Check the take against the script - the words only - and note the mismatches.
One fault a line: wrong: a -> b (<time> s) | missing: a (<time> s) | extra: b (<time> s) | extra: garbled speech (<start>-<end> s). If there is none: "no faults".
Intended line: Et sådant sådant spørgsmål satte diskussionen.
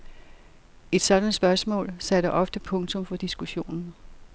missing: sådant (1.4 s)
extra: ofte punktum for (2.3 s)